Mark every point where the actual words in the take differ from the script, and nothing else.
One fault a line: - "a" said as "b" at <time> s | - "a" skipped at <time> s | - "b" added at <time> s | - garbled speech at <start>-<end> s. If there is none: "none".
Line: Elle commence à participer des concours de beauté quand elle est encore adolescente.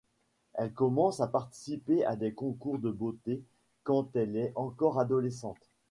- "à" added at 2.0 s